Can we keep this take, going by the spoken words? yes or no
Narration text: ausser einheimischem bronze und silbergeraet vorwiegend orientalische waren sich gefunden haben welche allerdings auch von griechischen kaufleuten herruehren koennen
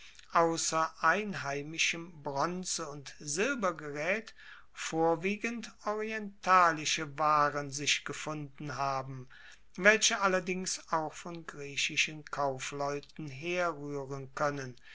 yes